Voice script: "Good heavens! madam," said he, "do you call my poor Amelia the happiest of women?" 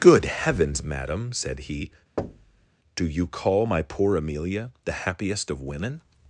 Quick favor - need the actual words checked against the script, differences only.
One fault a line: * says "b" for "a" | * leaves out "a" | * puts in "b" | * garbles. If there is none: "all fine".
all fine